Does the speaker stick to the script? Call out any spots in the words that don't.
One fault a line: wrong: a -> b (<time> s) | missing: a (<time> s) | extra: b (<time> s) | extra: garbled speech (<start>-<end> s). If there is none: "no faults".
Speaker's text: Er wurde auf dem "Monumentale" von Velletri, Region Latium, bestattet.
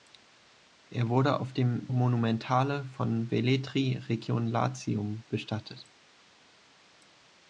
no faults